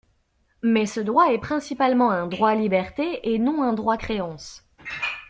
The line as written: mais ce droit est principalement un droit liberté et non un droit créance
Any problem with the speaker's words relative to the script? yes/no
no